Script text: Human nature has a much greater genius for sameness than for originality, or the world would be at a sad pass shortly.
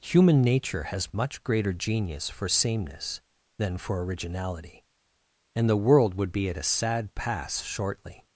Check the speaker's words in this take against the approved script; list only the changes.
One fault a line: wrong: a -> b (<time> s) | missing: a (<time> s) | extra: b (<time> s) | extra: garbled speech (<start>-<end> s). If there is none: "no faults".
missing: a (1.1 s)
wrong: or -> and (5.5 s)